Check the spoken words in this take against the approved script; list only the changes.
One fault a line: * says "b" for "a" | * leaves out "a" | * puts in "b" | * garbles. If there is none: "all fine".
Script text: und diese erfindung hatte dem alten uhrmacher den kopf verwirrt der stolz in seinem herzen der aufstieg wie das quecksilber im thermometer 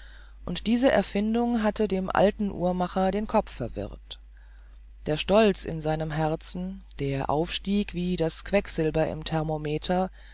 all fine